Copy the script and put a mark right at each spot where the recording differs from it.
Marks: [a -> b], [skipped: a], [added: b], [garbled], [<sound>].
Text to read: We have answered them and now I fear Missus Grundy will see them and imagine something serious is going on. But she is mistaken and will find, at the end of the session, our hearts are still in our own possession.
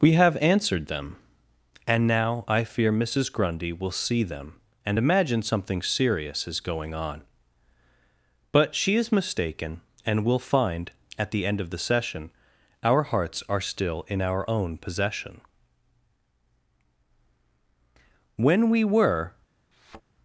We have answered them and now I fear Missus Grundy will see them and imagine something serious is going on. But she is mistaken and will find, at the end of the session, our hearts are still in our own possession. [added: When we were] [thud]